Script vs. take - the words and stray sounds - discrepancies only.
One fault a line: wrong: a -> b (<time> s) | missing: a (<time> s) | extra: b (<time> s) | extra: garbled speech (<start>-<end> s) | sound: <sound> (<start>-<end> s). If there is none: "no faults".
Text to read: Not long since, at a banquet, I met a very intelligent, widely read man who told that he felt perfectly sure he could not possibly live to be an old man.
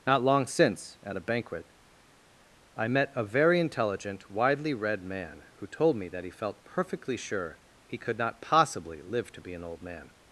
extra: me (5.9 s)